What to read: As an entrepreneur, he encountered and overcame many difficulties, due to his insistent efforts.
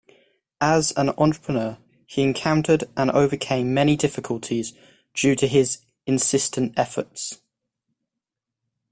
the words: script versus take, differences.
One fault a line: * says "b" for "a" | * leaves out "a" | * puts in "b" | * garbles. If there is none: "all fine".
all fine